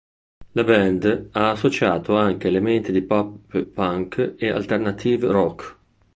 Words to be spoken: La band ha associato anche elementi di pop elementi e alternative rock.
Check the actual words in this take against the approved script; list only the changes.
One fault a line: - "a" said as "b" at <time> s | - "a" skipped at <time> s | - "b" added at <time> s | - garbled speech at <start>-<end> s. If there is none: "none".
- "elementi" said as "punk" at 3.6 s